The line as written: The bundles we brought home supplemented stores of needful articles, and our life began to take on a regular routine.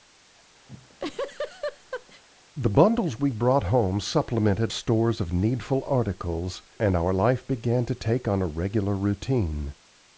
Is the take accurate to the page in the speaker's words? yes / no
yes